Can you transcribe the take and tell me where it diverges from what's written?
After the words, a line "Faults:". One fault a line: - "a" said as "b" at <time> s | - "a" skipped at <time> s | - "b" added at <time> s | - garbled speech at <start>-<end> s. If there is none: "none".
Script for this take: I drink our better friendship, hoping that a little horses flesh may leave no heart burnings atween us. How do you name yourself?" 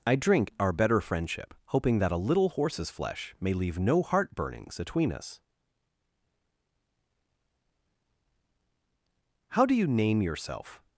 I drink our better friendship, hoping that a little horses flesh may leave no heart burnings atween us. How do you name yourself?"
Faults:
none